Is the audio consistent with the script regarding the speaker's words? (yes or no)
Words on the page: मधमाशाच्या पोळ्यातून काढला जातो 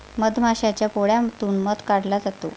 no